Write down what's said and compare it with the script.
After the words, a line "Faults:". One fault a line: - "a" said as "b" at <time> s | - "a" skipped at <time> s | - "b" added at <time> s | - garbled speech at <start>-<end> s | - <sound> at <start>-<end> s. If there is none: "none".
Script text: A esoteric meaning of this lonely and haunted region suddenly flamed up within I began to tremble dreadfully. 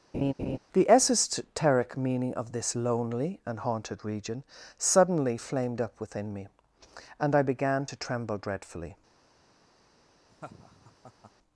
The esoteric meaning of this lonely and haunted region suddenly flamed up within me, and I began to tremble dreadfully.
Faults:
- laugh at 0.1-0.6 s
- "A" said as "The" at 0.7 s
- "me and" added at 6.3 s
- laugh at 10.3-11.3 s